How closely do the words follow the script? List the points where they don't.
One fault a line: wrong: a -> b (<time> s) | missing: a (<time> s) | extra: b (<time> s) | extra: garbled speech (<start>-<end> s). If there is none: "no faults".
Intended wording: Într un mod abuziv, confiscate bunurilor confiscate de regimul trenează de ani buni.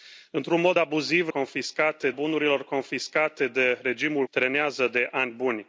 no faults